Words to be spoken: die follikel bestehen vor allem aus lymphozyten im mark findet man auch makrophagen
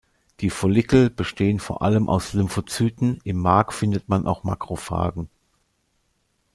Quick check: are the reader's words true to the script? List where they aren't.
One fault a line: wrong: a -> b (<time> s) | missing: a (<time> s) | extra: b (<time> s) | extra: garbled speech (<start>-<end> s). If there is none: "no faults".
no faults